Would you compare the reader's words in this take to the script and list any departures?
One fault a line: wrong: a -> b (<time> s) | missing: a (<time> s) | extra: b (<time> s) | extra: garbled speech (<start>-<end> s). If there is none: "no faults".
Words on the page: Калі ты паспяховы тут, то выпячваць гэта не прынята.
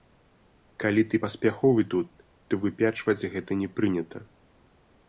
no faults